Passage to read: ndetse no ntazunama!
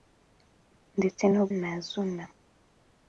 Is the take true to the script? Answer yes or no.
yes